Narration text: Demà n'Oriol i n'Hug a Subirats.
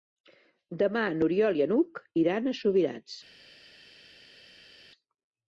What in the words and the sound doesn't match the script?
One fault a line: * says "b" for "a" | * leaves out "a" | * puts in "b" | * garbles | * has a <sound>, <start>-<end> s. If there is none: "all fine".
* puts in "iran"